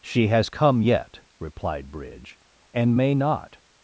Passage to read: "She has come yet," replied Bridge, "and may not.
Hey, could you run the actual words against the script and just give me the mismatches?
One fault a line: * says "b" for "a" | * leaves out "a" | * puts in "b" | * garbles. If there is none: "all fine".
all fine